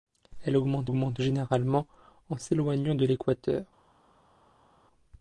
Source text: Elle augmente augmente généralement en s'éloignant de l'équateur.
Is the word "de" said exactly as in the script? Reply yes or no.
yes